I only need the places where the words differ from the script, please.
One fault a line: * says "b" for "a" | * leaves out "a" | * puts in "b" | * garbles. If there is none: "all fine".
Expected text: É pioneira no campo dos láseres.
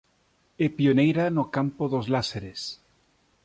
all fine